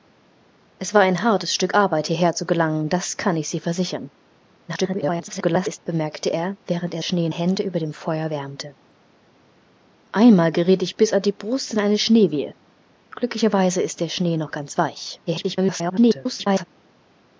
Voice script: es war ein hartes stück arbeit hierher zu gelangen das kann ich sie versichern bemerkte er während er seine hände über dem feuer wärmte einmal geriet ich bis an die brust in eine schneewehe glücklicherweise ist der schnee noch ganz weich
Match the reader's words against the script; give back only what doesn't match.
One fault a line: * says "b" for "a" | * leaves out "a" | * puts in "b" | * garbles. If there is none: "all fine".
* garbles
* says "schnee" for "seine"
* garbles